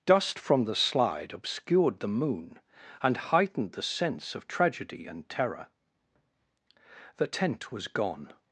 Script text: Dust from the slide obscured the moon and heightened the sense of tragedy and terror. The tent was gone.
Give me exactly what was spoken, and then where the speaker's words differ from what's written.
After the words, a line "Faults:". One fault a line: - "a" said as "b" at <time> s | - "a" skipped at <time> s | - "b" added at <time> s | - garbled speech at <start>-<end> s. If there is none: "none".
Dust from the slide obscured the moon and heightened the sense of tragedy and terror. The tent was gone.
Faults:
none